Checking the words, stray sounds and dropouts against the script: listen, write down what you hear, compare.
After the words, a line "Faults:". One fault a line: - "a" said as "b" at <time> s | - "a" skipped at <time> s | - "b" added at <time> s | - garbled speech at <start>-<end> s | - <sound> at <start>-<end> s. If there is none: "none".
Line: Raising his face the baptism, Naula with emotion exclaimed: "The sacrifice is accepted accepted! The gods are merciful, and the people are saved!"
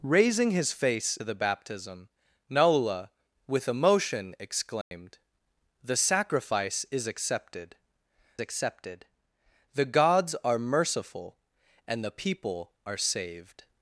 Raising his face the baptism, Naula with emotion exclaimed: "The sacrifice is accepted accepted! The gods are merciful, and the people are saved!"
Faults:
- dropout at 4.8-4.9 s